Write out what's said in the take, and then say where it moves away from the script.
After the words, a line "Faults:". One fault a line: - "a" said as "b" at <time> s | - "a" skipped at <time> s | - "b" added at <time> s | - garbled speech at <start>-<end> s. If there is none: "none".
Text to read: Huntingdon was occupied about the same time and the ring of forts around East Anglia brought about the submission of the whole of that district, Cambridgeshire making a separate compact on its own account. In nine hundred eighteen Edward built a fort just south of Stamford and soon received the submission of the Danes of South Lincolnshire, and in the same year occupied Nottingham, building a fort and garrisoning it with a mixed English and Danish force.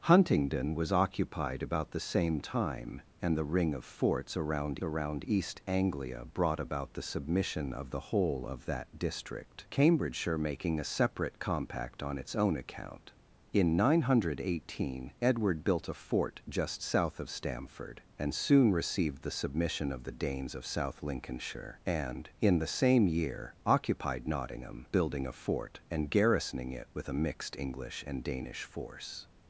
Huntingdon was occupied about the same time and the ring of forts around around East Anglia brought about the submission of the whole of that district, Cambridgeshire making a separate compact on its own account. In nine hundred eighteen Edward built a fort just south of Stamford and soon received the submission of the Danes of South Lincolnshire, and in the same year occupied Nottingham, building a fort and garrisoning it with a mixed English and Danish force.
Faults:
- "around" added at 4.8 s